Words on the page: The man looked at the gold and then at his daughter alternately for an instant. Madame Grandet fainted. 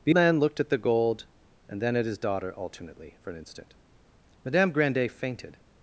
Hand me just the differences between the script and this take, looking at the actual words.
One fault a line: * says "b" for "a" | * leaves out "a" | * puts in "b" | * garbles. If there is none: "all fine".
all fine